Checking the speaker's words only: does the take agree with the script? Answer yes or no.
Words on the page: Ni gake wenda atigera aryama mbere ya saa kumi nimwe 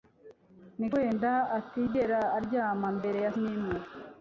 no